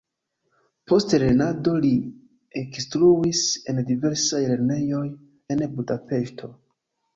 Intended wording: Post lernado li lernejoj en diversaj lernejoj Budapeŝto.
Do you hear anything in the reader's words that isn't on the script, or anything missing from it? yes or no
yes